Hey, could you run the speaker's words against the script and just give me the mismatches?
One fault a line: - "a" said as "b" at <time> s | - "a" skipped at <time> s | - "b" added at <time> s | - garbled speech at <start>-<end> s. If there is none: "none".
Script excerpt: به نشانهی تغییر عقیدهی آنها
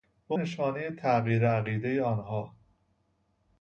none